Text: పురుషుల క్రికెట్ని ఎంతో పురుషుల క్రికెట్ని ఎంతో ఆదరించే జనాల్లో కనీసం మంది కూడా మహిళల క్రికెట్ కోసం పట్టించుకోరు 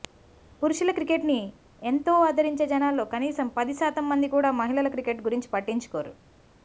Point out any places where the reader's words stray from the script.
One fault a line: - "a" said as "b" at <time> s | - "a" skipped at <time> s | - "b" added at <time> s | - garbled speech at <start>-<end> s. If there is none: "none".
- "పురుషుల క్రికెట్ని ఎంతో" skipped at 2.1 s
- "పది శాతం" added at 3.5 s
- "కోసం" said as "గురించి" at 5.2 s